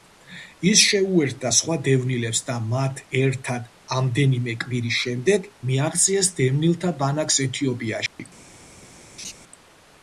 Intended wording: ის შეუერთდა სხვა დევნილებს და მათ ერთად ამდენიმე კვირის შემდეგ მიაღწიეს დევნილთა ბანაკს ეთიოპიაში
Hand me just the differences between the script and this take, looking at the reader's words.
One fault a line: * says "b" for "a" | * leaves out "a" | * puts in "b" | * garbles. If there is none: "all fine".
all fine